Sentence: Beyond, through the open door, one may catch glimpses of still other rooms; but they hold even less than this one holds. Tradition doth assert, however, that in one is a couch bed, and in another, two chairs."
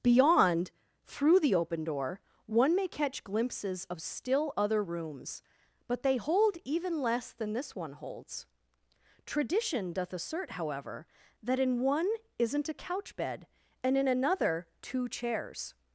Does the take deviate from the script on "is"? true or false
true